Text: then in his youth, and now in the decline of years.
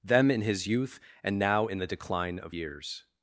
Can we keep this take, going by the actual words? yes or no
no